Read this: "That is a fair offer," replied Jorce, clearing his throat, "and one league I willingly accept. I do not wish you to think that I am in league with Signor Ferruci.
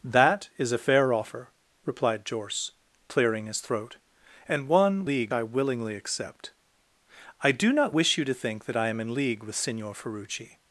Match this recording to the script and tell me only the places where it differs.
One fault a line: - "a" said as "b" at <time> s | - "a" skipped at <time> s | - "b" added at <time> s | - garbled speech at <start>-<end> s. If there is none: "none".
none